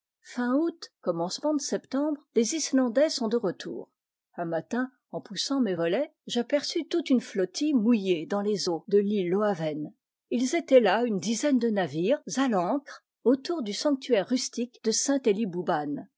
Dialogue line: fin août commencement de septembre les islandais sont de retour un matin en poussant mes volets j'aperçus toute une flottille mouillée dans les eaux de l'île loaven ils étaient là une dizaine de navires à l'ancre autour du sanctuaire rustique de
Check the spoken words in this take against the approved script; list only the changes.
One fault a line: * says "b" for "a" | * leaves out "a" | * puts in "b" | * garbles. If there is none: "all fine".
all fine